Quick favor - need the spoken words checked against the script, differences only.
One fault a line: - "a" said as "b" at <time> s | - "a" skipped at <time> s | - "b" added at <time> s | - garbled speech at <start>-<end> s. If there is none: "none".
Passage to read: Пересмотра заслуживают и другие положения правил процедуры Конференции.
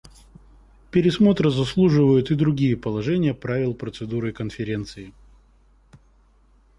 none